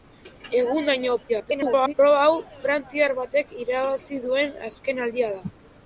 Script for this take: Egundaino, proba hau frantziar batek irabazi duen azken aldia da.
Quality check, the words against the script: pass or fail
fail